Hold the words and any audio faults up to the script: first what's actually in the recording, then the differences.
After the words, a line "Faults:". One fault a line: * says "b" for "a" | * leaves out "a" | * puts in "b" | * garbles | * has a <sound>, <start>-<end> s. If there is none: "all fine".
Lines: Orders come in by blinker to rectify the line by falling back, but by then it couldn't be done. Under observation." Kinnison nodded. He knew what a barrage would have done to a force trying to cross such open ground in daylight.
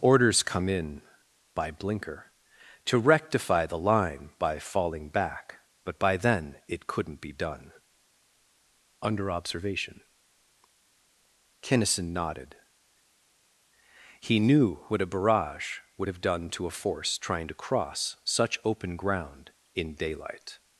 Orders come in by blinker to rectify the line by falling back, but by then it couldn't be done. Under observation." Kinnison nodded. He knew what a barrage would have done to a force trying to cross such open ground in daylight.
Faults:
all fine